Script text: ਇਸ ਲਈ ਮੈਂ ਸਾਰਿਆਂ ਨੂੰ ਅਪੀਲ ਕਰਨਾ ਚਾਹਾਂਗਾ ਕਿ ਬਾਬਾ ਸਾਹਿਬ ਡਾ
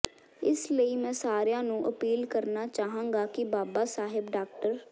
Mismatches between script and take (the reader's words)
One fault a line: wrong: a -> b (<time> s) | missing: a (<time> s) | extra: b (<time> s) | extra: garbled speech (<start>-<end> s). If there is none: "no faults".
no faults